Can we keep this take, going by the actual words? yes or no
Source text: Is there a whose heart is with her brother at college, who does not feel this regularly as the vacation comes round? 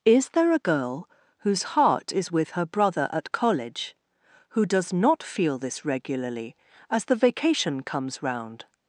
no